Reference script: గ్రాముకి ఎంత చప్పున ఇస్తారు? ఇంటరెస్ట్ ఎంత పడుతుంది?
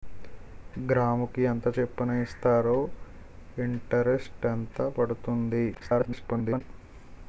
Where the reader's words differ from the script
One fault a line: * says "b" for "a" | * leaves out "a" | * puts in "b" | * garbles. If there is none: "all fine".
* garbles